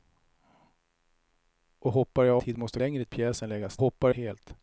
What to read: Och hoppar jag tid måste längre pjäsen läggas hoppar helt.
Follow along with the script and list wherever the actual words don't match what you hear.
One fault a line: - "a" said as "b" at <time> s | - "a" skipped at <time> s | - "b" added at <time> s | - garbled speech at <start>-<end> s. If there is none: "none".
none